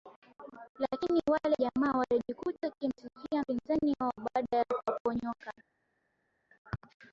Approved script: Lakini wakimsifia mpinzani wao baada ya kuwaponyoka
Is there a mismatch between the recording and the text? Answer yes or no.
yes